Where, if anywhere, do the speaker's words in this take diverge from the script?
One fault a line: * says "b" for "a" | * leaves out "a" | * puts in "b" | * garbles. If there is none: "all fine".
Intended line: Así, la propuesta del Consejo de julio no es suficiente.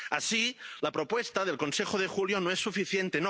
all fine